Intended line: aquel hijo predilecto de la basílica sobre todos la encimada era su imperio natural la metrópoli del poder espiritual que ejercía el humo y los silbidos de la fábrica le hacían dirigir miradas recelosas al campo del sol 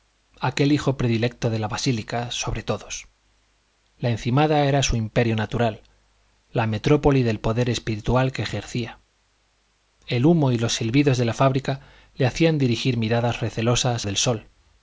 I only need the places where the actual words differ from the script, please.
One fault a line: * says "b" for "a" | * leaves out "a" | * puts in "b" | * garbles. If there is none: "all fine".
* leaves out "al campo"